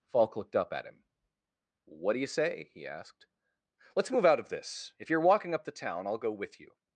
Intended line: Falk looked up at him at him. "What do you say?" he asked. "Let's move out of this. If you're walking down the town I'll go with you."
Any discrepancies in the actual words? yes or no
yes